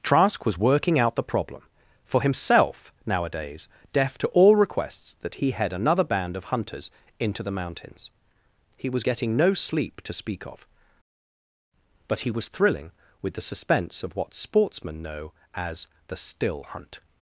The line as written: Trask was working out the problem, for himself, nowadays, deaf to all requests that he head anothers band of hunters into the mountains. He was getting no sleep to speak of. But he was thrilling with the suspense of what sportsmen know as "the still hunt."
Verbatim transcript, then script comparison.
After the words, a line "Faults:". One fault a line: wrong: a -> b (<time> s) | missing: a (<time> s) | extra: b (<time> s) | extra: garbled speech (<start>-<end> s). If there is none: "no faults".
Trask was working out the problem, for himself, nowadays, deaf to all requests that he head another band of hunters into the mountains. He was getting no sleep to speak of. But he was thrilling with the suspense of what sportsmen know as "the still hunt."
Faults:
wrong: anothers -> another (5.7 s)